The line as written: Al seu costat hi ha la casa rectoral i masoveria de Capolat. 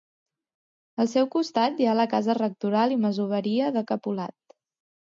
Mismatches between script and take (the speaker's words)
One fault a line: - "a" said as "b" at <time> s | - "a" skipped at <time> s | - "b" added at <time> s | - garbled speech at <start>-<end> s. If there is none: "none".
none